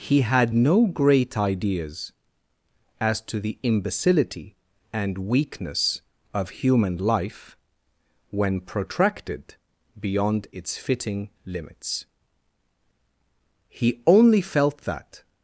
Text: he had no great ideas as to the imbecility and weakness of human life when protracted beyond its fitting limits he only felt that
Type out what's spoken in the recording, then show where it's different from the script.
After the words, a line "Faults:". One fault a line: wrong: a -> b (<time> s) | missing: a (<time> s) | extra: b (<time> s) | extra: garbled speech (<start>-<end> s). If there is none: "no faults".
he had no great ideas as to the imbecility and weakness of human life when protracted beyond its fitting limits he only felt that
Faults:
no faults